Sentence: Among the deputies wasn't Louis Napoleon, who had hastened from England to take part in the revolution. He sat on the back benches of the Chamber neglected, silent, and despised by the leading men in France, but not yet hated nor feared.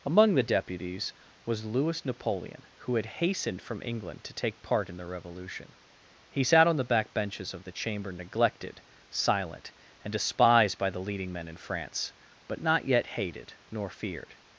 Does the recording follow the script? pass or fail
fail